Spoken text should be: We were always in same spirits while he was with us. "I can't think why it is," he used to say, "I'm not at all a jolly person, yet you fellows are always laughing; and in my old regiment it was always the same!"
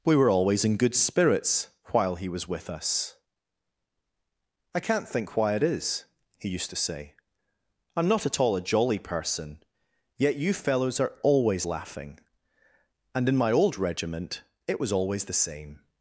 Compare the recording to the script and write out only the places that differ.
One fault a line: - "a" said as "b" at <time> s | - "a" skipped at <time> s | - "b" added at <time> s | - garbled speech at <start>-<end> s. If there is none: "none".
- "same" said as "good" at 0.8 s